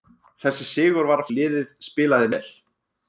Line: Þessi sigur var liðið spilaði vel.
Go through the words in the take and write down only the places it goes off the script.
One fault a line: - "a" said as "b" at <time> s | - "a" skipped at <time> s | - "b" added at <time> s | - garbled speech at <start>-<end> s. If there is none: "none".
none